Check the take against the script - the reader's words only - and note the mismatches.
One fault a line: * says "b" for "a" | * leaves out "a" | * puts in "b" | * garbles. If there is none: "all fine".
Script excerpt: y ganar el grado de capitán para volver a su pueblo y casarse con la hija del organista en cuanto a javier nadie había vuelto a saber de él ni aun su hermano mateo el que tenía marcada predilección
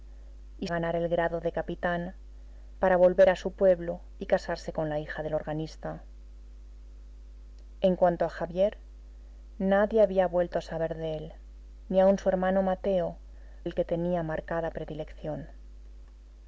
all fine